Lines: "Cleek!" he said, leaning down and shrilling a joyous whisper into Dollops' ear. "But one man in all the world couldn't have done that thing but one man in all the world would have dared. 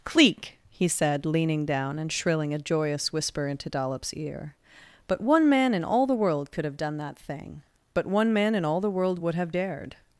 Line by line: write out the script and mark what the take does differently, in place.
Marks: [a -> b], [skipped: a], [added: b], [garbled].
"Cleek!" he said, leaning down and shrilling a joyous whisper into Dollops' ear. "But one man in all the world [couldn't -> could] have done that thing but one man in all the world would have dared.